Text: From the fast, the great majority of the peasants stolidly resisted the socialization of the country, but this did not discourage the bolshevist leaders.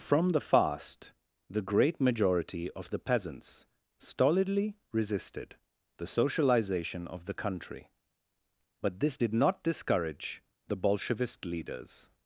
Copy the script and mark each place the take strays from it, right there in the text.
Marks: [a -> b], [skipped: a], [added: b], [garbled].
From the fast, the great majority of the peasants stolidly resisted the socialization of the country, but this did not discourage the bolshevist leaders.